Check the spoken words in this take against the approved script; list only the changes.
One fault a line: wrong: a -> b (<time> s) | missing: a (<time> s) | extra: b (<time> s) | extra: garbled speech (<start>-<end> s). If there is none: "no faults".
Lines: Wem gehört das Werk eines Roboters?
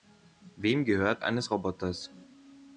missing: das Werk (1.2 s)